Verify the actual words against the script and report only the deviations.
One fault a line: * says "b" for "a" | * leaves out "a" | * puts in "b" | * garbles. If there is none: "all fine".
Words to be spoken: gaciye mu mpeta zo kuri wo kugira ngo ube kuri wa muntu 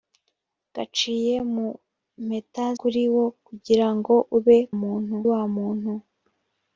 * leaves out "zo"
* says "muntu" for "kuri"